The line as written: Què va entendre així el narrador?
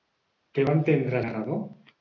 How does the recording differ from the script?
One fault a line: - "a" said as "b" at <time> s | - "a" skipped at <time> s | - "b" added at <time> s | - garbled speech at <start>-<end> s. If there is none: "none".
- "així el" skipped at 1.2 s